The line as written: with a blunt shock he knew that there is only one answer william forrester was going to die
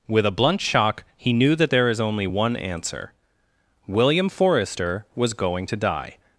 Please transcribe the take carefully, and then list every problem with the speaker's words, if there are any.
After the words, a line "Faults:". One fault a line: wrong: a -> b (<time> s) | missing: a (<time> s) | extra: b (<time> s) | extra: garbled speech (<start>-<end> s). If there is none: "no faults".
with a blunt shock he knew that there is only one answer william forrester was going to die
Faults:
no faults